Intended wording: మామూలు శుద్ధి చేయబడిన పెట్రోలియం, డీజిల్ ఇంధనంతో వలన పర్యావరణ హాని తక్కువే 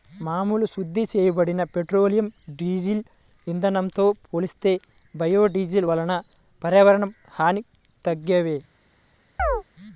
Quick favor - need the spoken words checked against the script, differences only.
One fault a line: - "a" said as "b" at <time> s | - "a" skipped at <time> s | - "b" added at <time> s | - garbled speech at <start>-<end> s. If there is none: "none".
- "పోలిస్తే బయోడీజిల్" added at 4.3 s